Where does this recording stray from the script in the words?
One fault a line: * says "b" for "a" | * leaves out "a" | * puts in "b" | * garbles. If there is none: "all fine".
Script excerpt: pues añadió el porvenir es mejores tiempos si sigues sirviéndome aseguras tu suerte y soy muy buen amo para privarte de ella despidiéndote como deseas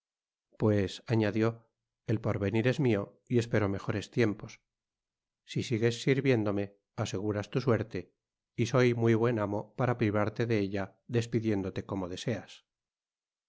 * puts in "mio y espero"